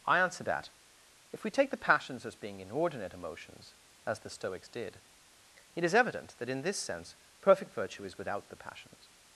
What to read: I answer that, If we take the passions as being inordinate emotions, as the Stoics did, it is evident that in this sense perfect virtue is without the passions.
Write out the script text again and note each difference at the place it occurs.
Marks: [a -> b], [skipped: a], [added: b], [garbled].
I answer that, If we take the passions as being inordinate emotions, as the Stoics did, it is evident that in this sense perfect virtue is without the passions.